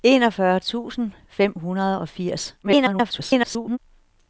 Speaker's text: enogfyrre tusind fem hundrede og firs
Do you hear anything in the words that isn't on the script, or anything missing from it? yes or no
yes